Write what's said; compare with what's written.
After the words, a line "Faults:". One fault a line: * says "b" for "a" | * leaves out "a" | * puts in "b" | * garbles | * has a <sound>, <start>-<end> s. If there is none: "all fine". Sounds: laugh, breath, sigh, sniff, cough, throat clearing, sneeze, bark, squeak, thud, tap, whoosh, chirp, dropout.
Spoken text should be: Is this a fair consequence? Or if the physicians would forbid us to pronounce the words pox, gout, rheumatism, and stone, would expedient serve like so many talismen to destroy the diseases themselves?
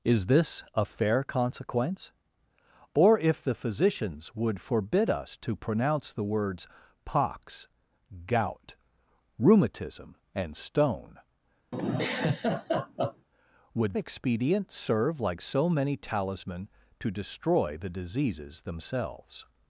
Is this a fair consequence? Or if the physicians would forbid us to pronounce the words pox, gout, rheumatism, and stone, would expedient serve like so many talismen to destroy the diseases themselves?
Faults:
* has a laugh, 11.7-13.3 s